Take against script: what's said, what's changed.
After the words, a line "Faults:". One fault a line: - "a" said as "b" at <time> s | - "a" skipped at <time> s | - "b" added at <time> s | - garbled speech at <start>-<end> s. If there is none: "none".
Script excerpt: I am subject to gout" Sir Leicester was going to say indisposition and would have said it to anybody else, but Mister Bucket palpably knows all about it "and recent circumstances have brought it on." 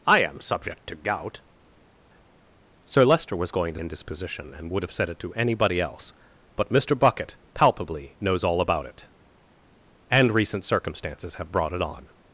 I am subject to gout" Sir Leicester was going to indisposition and would have said it to anybody else, but Mister Bucket palpably knows all about it "and recent circumstances have brought it on."
Faults:
- "say" skipped at 3.8 s